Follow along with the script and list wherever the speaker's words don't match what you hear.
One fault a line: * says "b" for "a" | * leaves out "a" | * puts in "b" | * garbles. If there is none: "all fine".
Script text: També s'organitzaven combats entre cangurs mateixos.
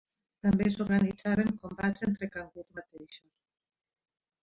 all fine